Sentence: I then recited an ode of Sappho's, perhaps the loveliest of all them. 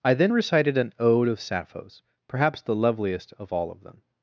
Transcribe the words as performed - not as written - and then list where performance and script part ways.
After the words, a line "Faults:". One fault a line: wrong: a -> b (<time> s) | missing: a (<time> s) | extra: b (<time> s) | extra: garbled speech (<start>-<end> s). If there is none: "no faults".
I then recited an ode of Sappho's, perhaps the loveliest of all of them.
Faults:
extra: of (3.7 s)